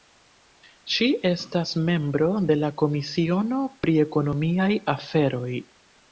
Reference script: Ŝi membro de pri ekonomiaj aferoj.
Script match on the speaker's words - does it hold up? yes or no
no